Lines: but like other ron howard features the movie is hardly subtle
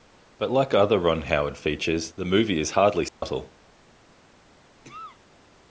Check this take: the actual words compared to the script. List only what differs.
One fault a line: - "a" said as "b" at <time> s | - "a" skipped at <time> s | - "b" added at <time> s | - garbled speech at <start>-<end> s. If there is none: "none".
none